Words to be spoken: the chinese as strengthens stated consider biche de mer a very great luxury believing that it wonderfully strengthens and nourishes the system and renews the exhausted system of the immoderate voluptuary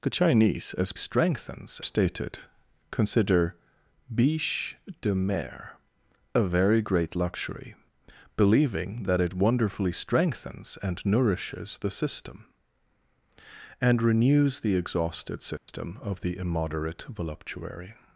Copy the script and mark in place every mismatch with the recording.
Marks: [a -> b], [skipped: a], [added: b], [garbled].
the chinese as strengthens stated consider biche de mer a very great luxury believing that it wonderfully strengthens and nourishes the system and renews the exhausted system of the immoderate voluptuary